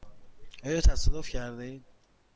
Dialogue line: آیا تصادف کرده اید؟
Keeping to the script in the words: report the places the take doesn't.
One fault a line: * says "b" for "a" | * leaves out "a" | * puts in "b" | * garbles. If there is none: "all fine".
all fine